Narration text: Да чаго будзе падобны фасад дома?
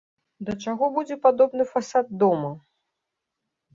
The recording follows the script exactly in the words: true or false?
true